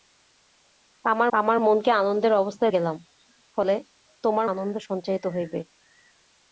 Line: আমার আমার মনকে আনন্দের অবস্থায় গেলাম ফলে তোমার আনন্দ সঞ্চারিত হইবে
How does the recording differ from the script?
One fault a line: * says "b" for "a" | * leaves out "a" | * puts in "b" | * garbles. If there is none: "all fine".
all fine